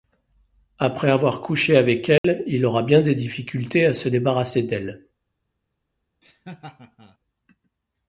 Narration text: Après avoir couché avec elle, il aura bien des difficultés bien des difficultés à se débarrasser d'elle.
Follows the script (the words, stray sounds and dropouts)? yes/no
no